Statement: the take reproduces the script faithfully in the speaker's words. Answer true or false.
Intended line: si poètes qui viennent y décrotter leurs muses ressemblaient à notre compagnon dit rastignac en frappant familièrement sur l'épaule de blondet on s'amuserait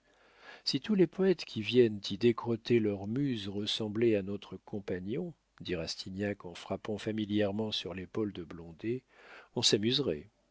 false